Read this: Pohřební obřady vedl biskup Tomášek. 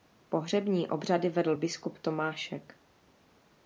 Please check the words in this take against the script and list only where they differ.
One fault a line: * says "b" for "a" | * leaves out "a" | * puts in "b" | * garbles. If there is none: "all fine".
all fine